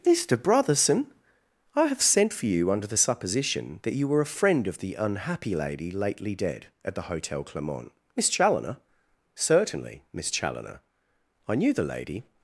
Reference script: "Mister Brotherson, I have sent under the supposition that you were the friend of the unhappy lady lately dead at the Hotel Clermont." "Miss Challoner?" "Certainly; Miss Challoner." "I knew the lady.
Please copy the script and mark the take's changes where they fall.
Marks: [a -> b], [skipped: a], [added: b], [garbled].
"Mister Brotherson, I have sent [added: for you] under the supposition that you were [the -> a] friend of the unhappy lady lately dead at the Hotel Clermont." "Miss Challoner?" "Certainly; Miss Challoner." "I knew the lady.